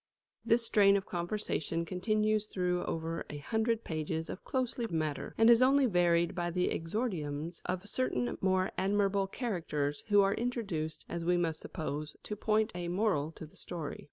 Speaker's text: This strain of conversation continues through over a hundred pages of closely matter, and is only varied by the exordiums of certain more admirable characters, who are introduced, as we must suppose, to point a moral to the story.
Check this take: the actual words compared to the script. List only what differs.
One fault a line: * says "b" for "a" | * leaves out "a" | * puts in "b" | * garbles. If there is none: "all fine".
all fine